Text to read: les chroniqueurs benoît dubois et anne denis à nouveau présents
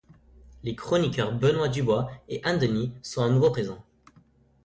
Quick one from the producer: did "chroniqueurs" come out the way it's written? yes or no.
yes